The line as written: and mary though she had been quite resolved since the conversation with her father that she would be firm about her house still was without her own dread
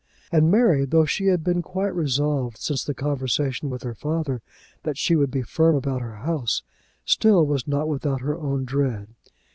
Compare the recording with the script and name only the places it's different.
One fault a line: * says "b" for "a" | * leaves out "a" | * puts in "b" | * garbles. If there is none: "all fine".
* puts in "not"